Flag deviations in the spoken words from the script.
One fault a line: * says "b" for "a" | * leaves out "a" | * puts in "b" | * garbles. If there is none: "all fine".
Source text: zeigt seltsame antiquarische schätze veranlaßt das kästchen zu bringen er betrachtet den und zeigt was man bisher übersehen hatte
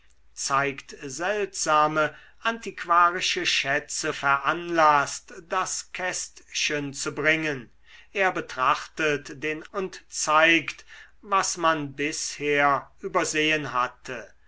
all fine